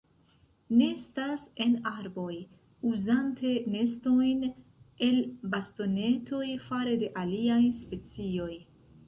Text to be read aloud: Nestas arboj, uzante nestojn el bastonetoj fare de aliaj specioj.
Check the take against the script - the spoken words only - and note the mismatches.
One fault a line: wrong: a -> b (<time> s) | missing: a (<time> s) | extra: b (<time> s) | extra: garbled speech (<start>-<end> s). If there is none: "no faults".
extra: en (1.6 s)